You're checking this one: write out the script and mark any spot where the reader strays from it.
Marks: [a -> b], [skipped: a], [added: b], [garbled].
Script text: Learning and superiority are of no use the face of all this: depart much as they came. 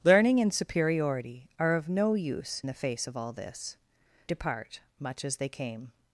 Learning and superiority are of no use the face of all this: depart much as they came.